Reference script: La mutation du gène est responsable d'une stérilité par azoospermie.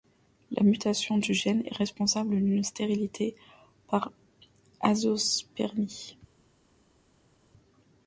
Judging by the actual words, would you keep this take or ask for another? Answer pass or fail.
pass